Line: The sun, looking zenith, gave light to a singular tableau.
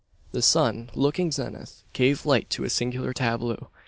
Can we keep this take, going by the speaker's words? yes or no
yes